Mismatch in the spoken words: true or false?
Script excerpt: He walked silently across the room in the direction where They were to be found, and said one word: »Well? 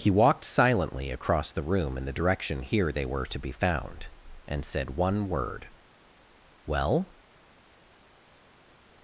true